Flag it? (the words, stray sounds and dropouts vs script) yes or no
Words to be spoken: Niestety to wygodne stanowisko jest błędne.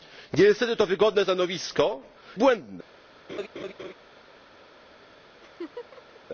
yes